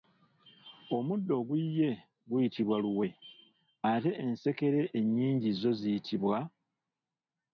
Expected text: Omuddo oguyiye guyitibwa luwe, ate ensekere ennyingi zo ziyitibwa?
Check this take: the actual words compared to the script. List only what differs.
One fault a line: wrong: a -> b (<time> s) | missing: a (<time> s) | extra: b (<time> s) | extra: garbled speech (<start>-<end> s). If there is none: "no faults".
no faults